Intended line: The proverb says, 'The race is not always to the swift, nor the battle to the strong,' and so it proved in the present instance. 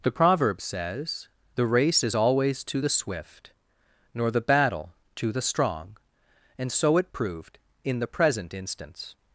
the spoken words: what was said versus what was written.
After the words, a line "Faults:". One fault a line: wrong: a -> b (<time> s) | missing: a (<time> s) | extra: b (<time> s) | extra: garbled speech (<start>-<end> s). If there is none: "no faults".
The proverb says, 'The race is always to the swift, nor the battle to the strong,' and so it proved in the present instance.
Faults:
missing: not (2.1 s)